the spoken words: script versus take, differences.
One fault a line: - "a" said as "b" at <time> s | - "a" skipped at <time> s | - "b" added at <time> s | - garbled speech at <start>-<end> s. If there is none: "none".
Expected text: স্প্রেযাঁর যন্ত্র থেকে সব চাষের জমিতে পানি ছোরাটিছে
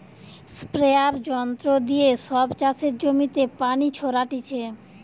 - "থেকে" said as "দিয়ে" at 1.9 s